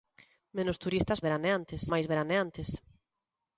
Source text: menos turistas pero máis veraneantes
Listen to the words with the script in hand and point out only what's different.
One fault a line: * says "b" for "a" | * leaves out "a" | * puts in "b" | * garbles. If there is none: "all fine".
* says "veraneantes" for "pero"